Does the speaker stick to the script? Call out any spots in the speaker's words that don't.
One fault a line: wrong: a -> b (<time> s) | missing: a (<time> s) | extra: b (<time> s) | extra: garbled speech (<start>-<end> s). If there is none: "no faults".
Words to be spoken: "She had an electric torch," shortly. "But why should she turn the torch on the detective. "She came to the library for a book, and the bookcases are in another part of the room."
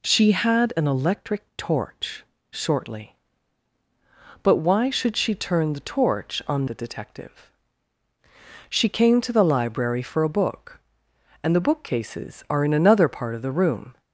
no faults